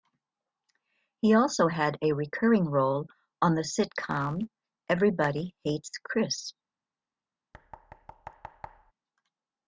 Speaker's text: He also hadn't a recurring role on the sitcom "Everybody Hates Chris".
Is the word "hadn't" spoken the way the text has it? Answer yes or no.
no